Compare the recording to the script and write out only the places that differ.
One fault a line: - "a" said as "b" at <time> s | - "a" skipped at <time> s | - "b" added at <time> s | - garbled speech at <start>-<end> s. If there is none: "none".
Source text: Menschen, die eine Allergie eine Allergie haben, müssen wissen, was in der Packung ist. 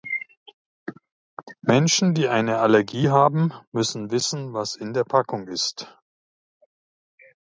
- "eine Allergie" skipped at 3.1 s